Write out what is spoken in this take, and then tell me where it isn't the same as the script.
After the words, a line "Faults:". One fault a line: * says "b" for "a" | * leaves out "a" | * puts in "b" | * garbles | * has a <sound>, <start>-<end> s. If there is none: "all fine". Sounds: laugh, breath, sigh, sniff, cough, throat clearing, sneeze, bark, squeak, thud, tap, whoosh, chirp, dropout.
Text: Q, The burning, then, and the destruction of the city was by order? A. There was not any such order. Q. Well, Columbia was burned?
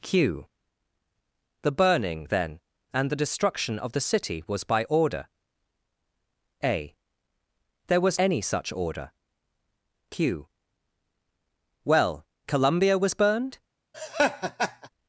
Q, The burning, then, and the destruction of the city was by order? A. There was any such order. Q. Well, Columbia was burned?
Faults:
* leaves out "not"
* has a laugh, 13.9-14.9 s